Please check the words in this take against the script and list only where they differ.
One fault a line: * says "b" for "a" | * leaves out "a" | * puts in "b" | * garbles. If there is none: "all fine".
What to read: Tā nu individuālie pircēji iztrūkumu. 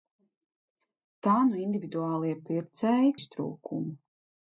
all fine